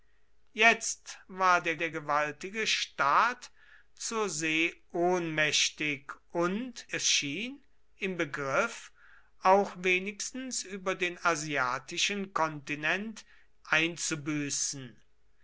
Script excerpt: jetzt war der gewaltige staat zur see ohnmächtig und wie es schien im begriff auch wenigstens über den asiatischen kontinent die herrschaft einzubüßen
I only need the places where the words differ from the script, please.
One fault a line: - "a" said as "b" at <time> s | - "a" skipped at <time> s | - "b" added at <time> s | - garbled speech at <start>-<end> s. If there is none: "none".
- "der" added at 1.8 s
- "wie" skipped at 6.9 s
- "die herrschaft" skipped at 13.2 s